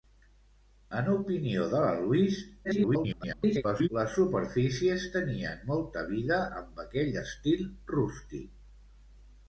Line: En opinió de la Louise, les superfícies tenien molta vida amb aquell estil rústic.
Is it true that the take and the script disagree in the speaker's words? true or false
true